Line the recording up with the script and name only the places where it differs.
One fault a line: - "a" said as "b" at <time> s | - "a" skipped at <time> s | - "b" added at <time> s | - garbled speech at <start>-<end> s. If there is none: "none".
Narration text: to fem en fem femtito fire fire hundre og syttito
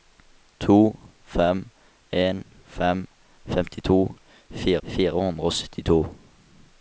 none